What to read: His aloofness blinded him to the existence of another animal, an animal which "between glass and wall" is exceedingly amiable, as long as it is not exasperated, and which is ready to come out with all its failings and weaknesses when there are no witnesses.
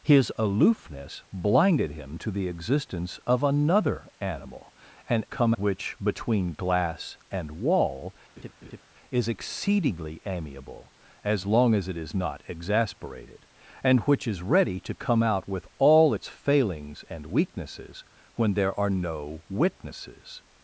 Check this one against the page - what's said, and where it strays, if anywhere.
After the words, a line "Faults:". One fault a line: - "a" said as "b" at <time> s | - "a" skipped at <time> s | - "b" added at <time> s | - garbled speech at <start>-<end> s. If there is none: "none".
His aloofness blinded him to the existence of another animal, an come which "between glass and wall" is exceedingly amiable, as long as it is not exasperated, and which is ready to come out with all its failings and weaknesses when there are no witnesses.
Faults:
- "animal" said as "come" at 5.2 s